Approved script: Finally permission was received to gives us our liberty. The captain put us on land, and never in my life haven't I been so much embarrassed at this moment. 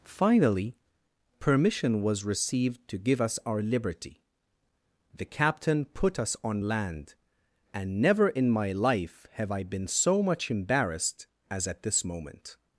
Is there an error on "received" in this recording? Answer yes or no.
no